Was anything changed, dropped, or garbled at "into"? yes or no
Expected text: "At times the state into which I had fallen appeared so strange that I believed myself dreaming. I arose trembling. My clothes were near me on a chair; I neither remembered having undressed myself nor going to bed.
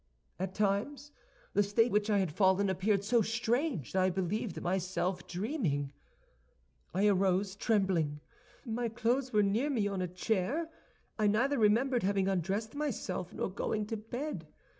yes